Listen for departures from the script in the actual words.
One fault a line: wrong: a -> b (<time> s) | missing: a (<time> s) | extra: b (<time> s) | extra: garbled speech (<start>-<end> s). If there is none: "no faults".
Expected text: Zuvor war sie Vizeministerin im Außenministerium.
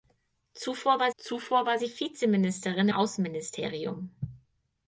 extra: zuvor war (1.2 s)
missing: im (2.9 s)